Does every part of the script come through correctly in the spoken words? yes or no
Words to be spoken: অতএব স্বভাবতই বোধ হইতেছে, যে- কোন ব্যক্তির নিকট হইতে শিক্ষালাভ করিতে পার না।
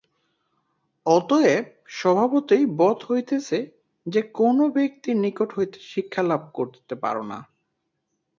yes